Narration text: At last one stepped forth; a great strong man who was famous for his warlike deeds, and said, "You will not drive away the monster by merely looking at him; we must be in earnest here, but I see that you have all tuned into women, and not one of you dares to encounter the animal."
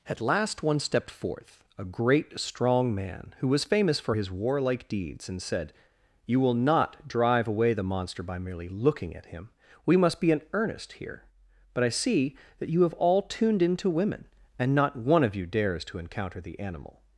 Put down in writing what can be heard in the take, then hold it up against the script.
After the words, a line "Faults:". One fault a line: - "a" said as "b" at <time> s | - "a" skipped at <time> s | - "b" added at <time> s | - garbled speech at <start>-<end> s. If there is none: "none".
At last one stepped forth; a great strong man who was famous for his warlike deeds, and said, "You will not drive away the monster by merely looking at him; we must be in earnest here, but I see that you have all tuned into women, and not one of you dares to encounter the animal."
Faults:
none